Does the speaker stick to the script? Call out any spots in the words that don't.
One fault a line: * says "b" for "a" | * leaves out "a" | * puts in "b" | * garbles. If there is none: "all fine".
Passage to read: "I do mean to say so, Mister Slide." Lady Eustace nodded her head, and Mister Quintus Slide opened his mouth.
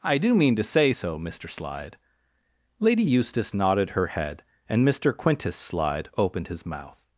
all fine